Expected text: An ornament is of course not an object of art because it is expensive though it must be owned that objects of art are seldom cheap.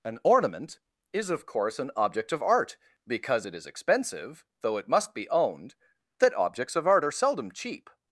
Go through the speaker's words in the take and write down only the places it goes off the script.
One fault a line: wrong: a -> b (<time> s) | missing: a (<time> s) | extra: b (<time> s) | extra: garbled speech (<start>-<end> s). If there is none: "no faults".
missing: not (1.8 s)